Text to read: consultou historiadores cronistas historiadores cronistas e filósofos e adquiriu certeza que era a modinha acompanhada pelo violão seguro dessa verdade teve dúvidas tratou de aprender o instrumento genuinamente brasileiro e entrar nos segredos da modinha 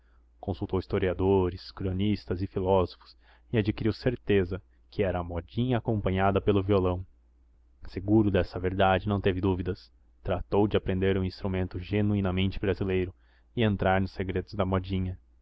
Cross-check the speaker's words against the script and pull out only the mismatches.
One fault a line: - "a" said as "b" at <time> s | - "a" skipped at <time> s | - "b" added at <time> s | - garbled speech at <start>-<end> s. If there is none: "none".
- "historiadores cronistas" skipped at 2.4 s
- "não" added at 9.1 s